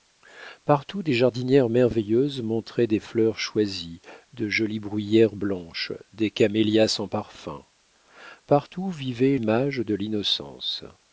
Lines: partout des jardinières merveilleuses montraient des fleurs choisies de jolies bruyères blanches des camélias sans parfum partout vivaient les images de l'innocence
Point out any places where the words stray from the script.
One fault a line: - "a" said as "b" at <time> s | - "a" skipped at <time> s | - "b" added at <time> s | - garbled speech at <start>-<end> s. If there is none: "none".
- "les" skipped at 9.4 s